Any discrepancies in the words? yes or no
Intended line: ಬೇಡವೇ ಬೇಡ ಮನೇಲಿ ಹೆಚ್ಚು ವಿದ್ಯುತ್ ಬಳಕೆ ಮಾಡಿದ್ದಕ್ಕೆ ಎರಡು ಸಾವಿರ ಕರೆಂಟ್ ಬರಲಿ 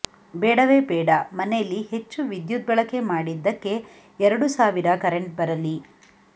no